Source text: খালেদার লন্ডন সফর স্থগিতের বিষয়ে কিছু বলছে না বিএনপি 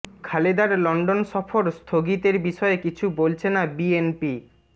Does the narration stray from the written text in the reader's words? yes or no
no